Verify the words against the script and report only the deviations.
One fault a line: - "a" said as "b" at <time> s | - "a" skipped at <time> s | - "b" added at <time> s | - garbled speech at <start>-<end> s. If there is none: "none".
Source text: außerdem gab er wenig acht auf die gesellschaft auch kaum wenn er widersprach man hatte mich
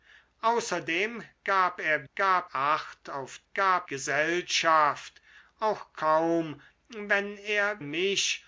- "wenig" said as "gab" at 2.1 s
- "die" said as "gab" at 3.5 s
- "widersprach man hatte" skipped at 7.8 s